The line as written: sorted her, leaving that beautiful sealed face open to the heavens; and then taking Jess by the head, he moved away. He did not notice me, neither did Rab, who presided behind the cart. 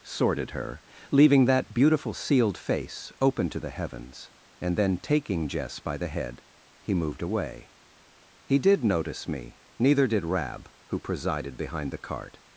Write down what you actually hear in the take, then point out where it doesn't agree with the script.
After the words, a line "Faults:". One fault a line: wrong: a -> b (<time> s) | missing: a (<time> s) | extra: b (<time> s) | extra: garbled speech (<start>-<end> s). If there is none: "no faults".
sorted her, leaving that beautiful sealed face open to the heavens; and then taking Jess by the head, he moved away. He did notice me, neither did Rab, who presided behind the cart.
Faults:
missing: not (8.8 s)